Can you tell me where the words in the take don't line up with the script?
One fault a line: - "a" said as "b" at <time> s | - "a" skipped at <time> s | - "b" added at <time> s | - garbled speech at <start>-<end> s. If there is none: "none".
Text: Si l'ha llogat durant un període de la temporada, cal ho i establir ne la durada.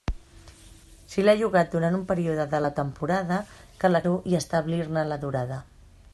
none